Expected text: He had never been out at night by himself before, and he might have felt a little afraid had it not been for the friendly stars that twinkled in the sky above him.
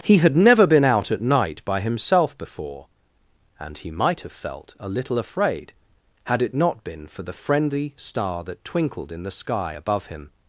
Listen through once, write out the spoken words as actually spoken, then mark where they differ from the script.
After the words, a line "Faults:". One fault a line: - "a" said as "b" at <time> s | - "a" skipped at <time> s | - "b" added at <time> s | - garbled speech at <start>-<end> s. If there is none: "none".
He had never been out at night by himself before, and he might have felt a little afraid had it not been for the friendly star that twinkled in the sky above him.
Faults:
- "stars" said as "star" at 8.0 s